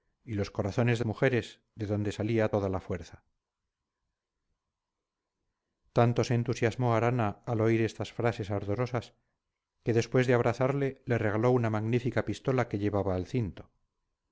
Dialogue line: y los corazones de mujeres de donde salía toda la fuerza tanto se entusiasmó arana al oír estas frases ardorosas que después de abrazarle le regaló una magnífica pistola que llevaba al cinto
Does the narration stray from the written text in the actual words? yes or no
no